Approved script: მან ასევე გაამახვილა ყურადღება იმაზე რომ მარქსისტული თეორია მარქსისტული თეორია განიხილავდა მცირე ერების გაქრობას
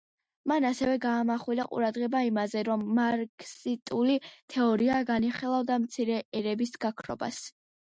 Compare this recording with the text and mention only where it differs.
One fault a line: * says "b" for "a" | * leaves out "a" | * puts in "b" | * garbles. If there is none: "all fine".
* leaves out "მარქსისტული თეორია"